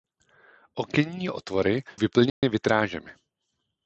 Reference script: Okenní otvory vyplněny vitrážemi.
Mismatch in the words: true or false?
false